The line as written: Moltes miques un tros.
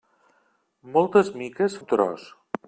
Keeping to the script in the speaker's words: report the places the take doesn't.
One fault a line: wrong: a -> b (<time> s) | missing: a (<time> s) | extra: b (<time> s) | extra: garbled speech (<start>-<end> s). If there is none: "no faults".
no faults